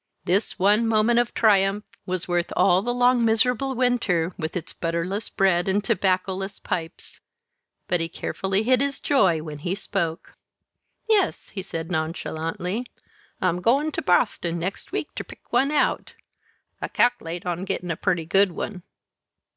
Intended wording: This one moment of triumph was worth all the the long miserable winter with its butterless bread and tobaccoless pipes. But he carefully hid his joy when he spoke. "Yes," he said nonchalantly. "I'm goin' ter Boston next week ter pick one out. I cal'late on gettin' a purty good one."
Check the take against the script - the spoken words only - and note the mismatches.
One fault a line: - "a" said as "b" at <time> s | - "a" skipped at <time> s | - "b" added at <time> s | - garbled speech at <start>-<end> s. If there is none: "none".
- "the" skipped at 2.9 s